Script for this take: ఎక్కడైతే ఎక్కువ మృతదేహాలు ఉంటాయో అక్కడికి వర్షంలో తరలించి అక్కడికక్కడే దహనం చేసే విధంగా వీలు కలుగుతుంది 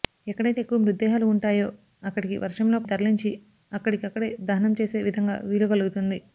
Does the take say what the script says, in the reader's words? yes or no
yes